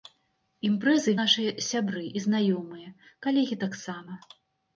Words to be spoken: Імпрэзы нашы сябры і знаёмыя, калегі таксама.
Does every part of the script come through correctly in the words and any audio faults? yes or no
yes